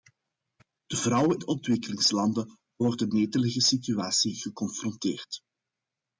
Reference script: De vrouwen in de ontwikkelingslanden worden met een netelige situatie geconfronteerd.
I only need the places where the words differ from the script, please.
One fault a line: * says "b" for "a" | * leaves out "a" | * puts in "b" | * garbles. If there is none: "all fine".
* leaves out "in"
* leaves out "met een"